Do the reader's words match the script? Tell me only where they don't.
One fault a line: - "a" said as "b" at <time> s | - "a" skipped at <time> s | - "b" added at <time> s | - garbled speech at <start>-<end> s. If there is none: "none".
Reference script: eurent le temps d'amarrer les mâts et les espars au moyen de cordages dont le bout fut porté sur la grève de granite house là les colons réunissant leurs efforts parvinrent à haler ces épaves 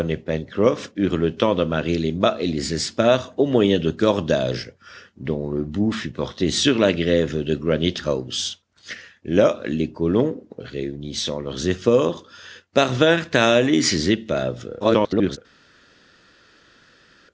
- garbled speech at 14.8-15.4 s